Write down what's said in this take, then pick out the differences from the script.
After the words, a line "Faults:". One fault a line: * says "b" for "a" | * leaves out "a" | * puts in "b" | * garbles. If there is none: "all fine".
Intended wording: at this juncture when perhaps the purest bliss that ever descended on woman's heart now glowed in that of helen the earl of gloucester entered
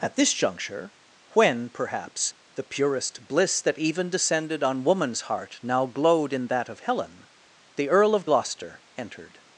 at this juncture when perhaps the purest bliss that even descended on woman's heart now glowed in that of helen the earl of gloucester entered
Faults:
* says "even" for "ever"